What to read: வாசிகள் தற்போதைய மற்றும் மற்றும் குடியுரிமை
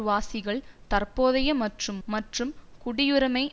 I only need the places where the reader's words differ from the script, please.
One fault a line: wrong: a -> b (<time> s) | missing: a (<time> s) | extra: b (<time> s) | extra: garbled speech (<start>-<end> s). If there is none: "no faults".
no faults